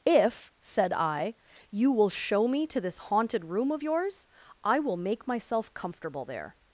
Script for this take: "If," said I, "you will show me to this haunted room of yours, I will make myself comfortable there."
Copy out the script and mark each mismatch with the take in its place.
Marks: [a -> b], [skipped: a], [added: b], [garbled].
"If," said I, "you will show me to this haunted room of yours, I will make myself comfortable there."